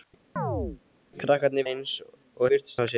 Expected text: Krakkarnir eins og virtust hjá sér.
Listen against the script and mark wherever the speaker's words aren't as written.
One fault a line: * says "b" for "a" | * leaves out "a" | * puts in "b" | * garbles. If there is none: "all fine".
all fine